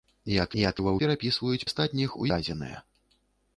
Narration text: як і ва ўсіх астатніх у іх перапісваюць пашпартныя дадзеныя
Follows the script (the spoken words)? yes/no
no